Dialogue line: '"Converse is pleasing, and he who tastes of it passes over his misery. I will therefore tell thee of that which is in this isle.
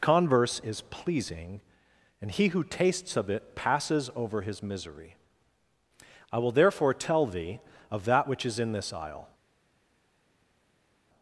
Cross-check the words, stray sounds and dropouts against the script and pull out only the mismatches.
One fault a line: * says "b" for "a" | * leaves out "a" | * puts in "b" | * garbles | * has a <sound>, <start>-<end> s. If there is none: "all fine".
all fine